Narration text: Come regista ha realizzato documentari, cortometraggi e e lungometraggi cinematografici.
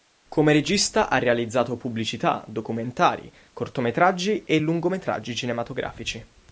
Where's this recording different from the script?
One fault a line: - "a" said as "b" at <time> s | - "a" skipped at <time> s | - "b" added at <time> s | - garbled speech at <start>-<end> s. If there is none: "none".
- "pubblicità" added at 1.8 s
- "e" skipped at 4.6 s